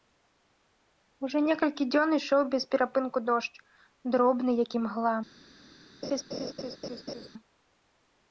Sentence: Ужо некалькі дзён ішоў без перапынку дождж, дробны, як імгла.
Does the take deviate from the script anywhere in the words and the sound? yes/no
yes